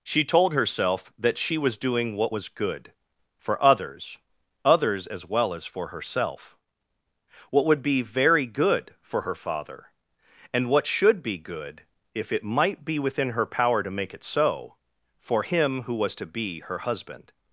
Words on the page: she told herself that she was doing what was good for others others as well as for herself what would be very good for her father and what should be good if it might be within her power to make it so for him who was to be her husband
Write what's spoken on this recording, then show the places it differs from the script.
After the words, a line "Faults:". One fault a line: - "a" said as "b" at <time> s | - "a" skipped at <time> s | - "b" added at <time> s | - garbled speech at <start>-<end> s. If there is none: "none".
she told herself that she was doing what was good for others others as well as for herself what would be very good for her father and what should be good if it might be within her power to make it so for him who was to be her husband
Faults:
none